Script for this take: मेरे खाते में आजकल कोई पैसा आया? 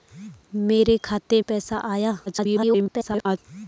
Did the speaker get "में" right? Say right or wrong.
wrong